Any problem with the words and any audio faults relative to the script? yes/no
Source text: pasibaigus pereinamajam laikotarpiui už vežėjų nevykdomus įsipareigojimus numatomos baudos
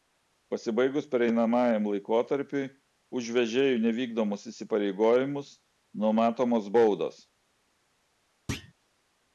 yes